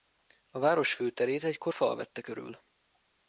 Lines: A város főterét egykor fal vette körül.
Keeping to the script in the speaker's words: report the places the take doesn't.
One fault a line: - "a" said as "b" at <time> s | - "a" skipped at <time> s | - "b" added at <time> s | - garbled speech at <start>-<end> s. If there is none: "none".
none